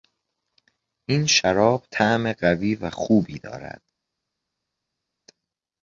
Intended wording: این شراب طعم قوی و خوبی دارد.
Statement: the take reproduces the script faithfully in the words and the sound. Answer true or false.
true